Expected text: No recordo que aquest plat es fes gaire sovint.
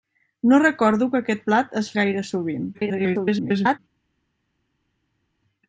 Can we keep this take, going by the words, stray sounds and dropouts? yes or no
no